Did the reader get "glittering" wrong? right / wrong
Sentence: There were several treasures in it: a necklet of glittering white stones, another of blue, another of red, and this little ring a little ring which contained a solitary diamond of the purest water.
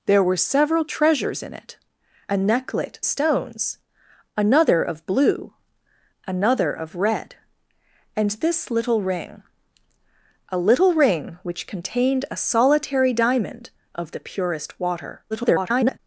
wrong